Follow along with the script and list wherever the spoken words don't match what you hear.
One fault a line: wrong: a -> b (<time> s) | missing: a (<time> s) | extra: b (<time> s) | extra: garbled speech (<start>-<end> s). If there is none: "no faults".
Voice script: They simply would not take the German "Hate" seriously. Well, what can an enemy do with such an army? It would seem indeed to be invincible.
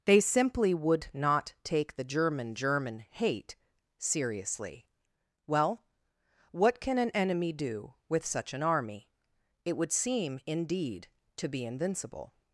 extra: German (2.5 s)